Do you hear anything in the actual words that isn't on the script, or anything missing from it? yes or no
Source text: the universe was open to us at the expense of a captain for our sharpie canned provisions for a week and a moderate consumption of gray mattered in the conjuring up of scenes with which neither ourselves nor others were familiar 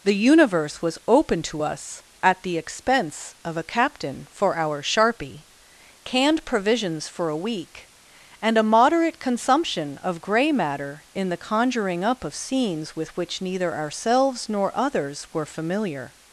yes